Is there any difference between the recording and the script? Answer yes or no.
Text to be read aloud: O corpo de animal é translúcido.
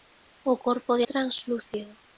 yes